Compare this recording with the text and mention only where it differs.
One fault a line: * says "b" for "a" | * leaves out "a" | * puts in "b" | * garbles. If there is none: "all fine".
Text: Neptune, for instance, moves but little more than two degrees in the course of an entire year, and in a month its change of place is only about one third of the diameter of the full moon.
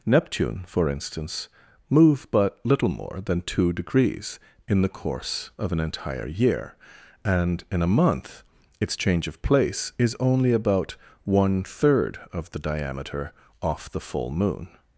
* says "move" for "moves"
* says "off" for "of"